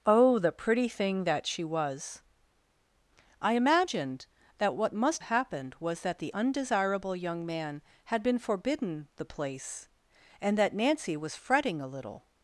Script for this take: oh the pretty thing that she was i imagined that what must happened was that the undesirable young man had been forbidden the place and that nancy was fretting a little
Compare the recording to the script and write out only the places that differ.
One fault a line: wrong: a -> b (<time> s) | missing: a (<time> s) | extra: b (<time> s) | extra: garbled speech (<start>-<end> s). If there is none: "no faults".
no faults